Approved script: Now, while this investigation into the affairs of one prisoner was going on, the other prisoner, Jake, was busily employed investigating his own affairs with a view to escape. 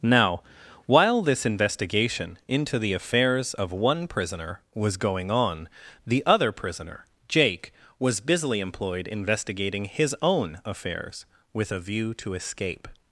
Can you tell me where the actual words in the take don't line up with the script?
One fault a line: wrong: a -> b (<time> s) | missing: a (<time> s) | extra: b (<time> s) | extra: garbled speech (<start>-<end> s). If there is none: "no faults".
no faults